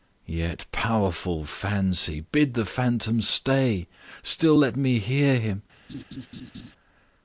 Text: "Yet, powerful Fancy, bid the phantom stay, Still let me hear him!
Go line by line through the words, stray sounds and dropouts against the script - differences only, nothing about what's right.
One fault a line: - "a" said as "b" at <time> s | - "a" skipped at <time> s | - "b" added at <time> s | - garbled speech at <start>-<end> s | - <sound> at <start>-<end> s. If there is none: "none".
- laugh at 5.9-6.7 s